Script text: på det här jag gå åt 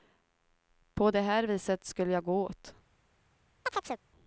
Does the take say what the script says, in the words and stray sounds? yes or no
no